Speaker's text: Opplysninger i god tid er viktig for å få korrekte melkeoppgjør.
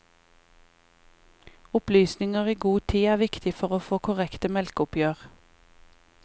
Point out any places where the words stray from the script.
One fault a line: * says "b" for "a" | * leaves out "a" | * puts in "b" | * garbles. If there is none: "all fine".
all fine